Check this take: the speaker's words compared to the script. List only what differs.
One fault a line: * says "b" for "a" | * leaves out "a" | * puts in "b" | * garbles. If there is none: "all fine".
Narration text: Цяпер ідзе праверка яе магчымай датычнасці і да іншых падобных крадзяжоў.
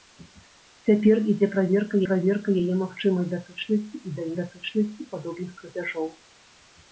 * puts in "праверка"
* says "датычнасці" for "іншых"